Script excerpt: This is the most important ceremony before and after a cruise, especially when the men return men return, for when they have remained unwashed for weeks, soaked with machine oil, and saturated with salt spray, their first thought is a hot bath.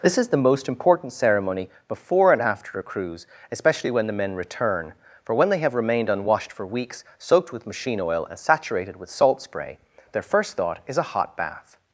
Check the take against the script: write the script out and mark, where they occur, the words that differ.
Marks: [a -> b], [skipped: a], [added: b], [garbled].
This is the most important ceremony before and after a cruise, especially when the men return [skipped: men return,] for when they have remained unwashed for weeks, soaked with machine oil, and saturated with salt spray, their first thought is a hot bath.